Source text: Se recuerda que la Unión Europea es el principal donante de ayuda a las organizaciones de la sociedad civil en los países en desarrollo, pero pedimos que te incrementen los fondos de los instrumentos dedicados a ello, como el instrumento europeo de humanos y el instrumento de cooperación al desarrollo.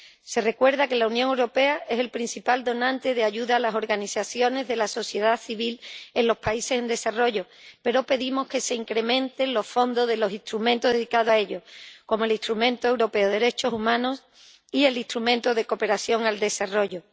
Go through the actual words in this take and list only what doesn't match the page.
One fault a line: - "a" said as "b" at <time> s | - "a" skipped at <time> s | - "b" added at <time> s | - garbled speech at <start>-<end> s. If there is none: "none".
- "te" said as "se" at 8.6 s
- "derechos" added at 13.3 s